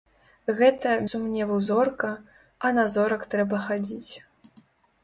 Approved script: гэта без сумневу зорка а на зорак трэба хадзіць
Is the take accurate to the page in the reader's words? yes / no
no